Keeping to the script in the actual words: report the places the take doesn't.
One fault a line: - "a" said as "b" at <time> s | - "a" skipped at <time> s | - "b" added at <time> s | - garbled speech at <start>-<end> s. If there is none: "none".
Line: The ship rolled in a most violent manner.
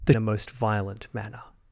- "ship rolled in" skipped at 0.1 s